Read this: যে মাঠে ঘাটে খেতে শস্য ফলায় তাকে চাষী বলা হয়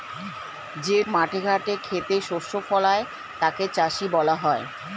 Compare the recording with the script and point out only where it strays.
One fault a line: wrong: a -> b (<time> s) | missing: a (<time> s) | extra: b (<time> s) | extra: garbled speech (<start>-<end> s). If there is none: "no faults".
no faults